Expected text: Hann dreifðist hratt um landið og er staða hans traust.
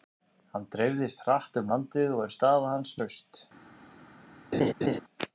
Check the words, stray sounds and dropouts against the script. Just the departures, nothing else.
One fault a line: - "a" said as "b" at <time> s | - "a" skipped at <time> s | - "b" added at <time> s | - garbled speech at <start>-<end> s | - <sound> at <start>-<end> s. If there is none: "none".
- laugh at 4.5-5.0 s